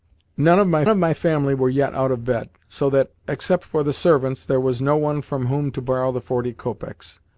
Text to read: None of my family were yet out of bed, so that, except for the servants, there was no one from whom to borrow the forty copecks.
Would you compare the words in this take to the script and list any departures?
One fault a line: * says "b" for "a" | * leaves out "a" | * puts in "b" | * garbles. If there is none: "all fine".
* puts in "of my"